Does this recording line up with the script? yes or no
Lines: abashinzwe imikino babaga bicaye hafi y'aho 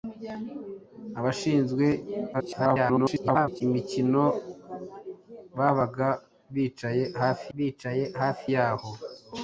no